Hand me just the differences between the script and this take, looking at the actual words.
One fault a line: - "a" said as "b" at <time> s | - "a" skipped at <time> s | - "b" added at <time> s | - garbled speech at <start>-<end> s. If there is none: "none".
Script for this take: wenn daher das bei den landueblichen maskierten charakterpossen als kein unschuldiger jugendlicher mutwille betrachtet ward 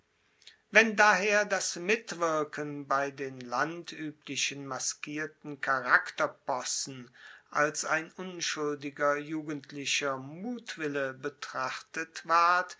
- "mitwirken" added at 1.8 s
- "kein" said as "ein" at 7.8 s